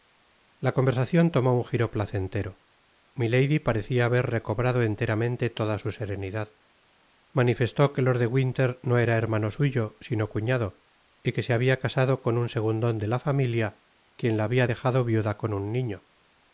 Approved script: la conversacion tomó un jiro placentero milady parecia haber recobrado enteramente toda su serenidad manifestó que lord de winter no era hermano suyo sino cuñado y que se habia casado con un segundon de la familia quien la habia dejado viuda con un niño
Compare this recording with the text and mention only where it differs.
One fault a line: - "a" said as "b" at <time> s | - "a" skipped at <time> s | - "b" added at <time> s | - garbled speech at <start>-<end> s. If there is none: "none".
none